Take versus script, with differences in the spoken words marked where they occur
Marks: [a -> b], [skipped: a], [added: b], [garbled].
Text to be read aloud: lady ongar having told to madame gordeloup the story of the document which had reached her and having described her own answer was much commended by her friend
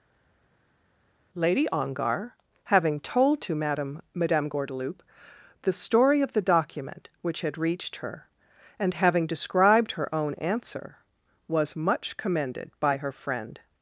lady ongar having told to madame [added: madame] gordeloup the story of the document which had reached her and having described her own answer was much commended by her friend